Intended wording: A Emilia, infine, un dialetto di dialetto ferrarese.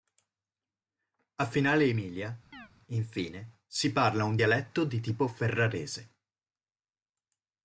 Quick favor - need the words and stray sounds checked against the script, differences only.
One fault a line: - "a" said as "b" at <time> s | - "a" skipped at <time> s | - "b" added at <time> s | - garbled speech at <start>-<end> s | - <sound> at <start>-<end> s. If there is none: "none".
- "Finale" added at 1.4 s
- chirp at 2.5-2.7 s
- "si parla" added at 3.7 s
- "dialetto" said as "tipo" at 5.0 s